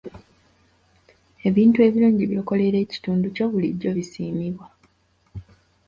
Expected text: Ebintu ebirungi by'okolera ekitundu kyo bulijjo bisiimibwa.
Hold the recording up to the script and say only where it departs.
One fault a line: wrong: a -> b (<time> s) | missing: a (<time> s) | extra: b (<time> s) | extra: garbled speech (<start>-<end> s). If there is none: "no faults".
no faults